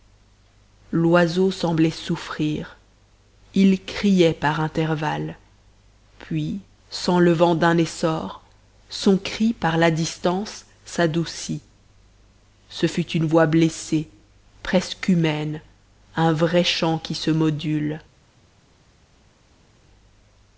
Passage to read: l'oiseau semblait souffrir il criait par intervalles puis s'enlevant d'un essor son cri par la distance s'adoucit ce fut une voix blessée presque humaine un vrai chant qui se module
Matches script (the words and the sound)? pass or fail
pass